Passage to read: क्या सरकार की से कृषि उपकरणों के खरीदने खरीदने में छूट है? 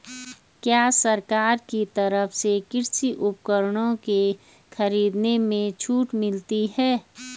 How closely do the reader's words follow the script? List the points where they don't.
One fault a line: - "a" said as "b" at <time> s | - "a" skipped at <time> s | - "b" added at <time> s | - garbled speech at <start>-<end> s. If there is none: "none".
- "तरफ" added at 1.9 s
- "खरीदने" skipped at 5.4 s
- "मिलती" added at 6.1 s